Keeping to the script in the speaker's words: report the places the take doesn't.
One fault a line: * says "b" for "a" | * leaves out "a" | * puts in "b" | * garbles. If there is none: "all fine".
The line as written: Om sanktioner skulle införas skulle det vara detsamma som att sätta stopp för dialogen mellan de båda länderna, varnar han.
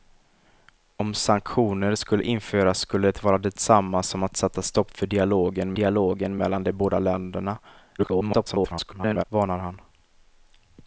* puts in "dialogen"
* garbles